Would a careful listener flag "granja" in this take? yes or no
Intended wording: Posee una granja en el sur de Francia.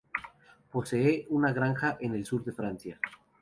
no